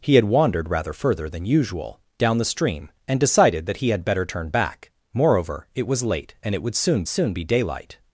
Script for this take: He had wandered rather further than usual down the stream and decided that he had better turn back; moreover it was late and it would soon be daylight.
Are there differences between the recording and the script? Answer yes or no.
yes